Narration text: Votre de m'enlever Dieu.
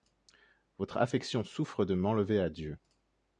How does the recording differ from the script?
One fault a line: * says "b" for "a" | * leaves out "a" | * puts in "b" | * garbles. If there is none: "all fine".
* puts in "affection souffre"
* puts in "à"